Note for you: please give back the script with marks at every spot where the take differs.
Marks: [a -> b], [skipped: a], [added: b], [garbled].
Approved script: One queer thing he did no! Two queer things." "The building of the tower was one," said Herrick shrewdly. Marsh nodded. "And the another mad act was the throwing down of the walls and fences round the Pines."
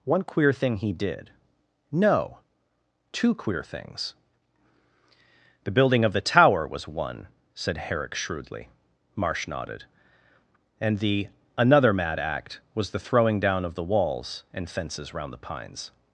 One queer thing he did no! Two queer things." "The building of the tower was one," said Herrick shrewdly. Marsh nodded. "And the another mad act was the throwing down of the walls and fences round the Pines."